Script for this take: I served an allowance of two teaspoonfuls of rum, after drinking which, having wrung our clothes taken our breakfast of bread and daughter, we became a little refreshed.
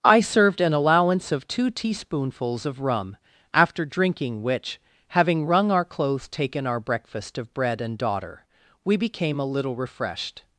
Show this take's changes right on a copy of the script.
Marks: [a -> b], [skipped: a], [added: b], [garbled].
I served an allowance of two teaspoonfuls of rum, after drinking which, having wrung our clothes taken our breakfast of bread and daughter, we became a little refreshed.